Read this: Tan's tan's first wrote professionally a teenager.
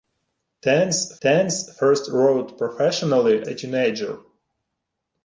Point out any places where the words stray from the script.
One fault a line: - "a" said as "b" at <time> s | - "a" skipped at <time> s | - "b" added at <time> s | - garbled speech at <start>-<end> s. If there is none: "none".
none